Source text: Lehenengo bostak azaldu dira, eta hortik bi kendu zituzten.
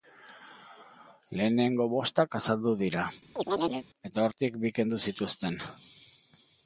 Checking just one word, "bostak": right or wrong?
right